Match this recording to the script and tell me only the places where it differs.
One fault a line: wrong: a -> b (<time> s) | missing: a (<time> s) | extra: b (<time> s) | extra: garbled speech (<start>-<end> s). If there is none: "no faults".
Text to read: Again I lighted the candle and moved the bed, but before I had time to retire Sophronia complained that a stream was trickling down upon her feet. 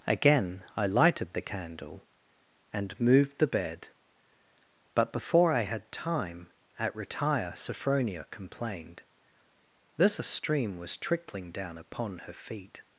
wrong: to -> at (6.8 s)
wrong: that -> this (10.0 s)